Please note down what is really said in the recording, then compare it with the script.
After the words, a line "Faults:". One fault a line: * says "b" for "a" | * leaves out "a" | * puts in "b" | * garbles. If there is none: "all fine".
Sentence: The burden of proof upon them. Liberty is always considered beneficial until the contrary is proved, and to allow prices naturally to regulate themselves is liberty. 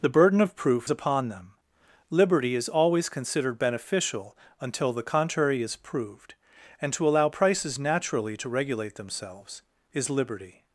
The burden of proof upon them. Liberty is always considered beneficial until the contrary is proved, and to allow prices naturally to regulate themselves is liberty.
Faults:
all fine